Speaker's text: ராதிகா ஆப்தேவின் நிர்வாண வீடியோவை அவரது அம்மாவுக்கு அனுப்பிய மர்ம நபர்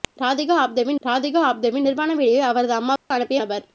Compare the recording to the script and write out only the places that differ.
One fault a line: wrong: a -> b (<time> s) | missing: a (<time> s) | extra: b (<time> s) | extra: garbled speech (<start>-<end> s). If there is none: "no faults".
extra: ராதிகா ஆப்தேவின் (1.1 s)
missing: மர்ம (3.4 s)